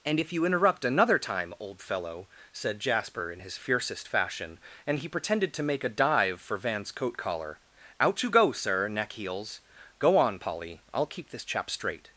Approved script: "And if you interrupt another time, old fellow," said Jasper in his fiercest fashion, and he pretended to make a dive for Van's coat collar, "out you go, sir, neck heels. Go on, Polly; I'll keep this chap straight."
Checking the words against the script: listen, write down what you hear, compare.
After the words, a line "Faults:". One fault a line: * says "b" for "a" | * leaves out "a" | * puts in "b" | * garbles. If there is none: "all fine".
"And if you interrupt another time, old fellow," said Jasper in his fiercest fashion, and he pretended to make a dive for Van's coat collar, "out you go, sir, neck heels. Go on, Polly; I'll keep this chap straight."
Faults:
all fine